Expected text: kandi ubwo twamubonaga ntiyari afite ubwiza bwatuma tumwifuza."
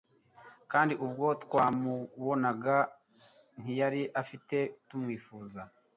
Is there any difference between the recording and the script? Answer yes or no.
yes